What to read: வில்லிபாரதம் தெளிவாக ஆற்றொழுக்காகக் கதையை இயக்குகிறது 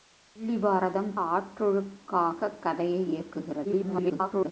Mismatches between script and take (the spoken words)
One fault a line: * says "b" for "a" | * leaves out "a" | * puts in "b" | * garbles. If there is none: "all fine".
* leaves out "தெளிவாக"
* garbles